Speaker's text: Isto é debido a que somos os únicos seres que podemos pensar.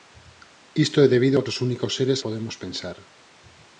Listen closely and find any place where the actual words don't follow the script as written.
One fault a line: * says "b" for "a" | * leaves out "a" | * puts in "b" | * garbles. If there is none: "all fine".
* leaves out "que somos"
* leaves out "que"